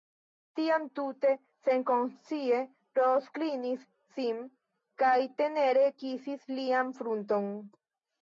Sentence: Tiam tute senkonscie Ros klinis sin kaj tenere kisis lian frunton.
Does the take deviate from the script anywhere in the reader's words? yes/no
no